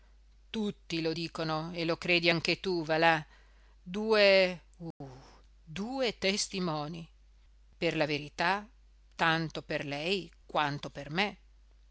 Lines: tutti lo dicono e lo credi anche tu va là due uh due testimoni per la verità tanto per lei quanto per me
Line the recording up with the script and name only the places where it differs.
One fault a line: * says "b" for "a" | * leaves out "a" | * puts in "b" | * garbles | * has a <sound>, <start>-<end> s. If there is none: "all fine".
* has a dropout, 4.9-5.0 s